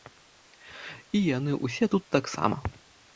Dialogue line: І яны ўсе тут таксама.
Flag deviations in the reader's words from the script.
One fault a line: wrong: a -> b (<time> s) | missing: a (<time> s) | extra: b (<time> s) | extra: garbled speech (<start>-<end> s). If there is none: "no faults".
no faults